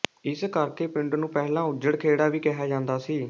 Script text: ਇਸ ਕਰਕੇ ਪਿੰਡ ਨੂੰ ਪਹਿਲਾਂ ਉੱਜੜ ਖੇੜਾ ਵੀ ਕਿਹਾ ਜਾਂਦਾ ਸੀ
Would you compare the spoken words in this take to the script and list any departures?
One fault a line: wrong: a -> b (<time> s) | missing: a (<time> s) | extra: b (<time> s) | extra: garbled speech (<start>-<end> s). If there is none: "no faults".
no faults